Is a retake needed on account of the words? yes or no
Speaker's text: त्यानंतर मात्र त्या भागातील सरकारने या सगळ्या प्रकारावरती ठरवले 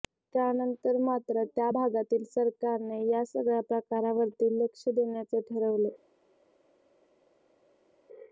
yes